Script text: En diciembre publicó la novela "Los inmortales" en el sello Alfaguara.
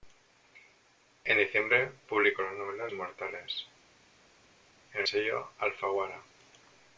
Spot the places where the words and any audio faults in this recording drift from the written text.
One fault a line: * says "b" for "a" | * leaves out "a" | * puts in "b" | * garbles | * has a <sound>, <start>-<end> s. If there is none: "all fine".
* leaves out "Los"
* leaves out "el"